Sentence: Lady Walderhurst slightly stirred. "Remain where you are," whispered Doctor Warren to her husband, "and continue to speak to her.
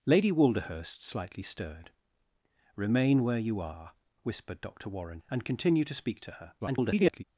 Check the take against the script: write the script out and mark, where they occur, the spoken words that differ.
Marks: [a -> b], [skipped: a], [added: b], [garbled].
Lady Walderhurst slightly stirred. "Remain where you are," whispered Doctor Warren [skipped: to her husband,] "and continue to speak to her. [garbled]